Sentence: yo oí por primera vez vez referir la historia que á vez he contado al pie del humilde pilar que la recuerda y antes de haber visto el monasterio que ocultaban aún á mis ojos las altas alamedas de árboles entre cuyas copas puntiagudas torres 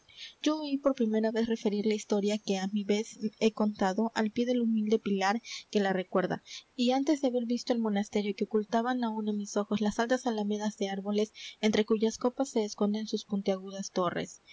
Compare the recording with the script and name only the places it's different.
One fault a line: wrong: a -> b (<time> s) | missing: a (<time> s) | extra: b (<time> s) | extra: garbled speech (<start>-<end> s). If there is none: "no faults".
missing: vez (1.5 s)
extra: mi (2.7 s)
extra: se esconden sus (12.5 s)